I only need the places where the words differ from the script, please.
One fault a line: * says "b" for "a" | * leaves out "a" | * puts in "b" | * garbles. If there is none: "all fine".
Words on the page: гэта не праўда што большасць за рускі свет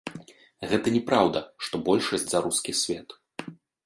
all fine